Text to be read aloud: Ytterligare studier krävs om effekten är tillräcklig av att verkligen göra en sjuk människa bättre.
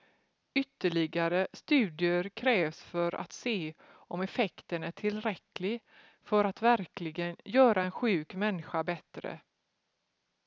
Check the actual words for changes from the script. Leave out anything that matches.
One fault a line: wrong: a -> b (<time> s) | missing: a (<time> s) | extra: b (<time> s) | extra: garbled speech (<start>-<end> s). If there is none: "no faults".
extra: för att se (2.8 s)
wrong: av -> för (6.2 s)